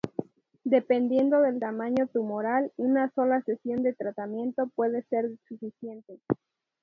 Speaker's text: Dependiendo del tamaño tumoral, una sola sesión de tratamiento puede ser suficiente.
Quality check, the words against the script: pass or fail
pass